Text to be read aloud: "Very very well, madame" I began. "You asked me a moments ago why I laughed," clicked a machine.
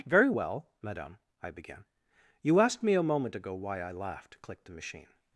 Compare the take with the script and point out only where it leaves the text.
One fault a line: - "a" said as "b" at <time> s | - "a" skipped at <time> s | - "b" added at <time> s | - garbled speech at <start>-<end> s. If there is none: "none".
- "very" skipped at 0.3 s
- "moments" said as "moment" at 3.0 s
- "a" said as "the" at 4.6 s